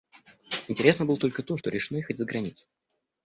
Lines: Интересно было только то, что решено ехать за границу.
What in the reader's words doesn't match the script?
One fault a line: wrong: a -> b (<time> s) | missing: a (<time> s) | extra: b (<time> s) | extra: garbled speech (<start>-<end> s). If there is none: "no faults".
no faults